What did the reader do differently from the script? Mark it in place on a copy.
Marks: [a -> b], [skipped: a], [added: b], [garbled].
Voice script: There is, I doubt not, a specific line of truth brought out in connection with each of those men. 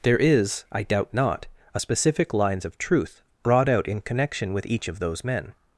There is, I doubt not, a specific [line -> lines] of truth brought out in connection with each of those men.